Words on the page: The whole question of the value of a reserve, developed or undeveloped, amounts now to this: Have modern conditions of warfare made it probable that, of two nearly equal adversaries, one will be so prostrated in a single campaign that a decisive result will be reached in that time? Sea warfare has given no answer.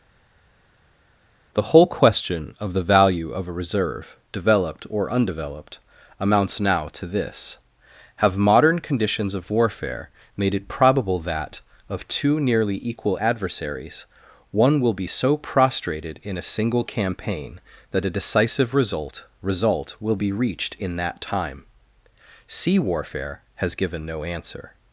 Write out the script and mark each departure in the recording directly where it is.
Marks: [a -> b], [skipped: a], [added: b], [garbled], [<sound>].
The whole question of the value of a reserve, developed or undeveloped, amounts now to this: Have modern conditions of warfare made it probable that, of two nearly equal adversaries, one will be so prostrated in a single campaign that a decisive result [added: result] will be reached in that time? Sea warfare has given no answer.